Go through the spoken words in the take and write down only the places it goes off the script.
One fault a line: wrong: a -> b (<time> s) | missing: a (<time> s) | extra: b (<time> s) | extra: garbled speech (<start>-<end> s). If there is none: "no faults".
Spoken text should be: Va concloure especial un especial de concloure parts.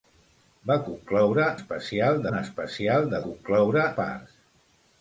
no faults